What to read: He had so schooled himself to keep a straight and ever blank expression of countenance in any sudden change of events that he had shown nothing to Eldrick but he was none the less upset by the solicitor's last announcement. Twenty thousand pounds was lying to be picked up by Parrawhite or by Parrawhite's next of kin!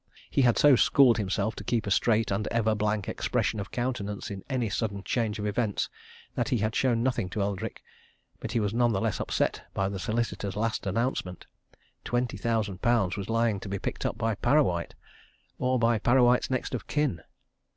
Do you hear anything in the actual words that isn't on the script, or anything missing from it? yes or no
no